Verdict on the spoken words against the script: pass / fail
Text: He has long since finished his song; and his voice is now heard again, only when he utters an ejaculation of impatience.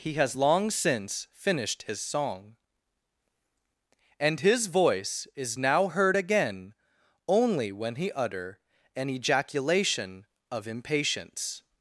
fail